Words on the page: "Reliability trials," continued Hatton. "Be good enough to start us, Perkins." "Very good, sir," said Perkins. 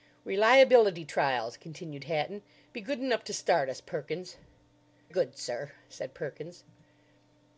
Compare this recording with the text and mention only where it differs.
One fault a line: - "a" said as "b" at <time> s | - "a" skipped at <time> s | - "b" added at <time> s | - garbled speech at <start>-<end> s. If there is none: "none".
- "Very" skipped at 4.4 s